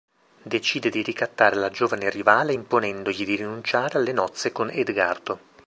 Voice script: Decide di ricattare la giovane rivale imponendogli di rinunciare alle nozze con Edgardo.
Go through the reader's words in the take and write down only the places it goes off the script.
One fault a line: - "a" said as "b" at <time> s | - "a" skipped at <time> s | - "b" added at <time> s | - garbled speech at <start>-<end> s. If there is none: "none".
none